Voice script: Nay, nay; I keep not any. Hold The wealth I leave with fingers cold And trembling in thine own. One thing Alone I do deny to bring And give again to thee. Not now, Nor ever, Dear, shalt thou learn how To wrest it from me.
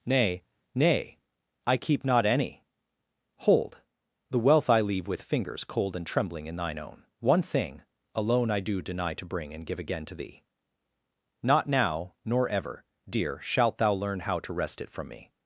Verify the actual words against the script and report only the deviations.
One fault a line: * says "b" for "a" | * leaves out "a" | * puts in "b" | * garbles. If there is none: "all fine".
all fine